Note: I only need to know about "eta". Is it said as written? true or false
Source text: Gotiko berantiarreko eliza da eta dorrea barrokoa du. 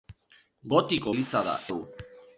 false